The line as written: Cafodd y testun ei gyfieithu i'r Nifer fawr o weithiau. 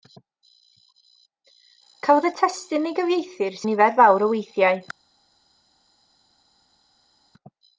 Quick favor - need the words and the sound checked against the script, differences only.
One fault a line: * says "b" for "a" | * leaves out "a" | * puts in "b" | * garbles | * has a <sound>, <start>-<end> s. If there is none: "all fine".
all fine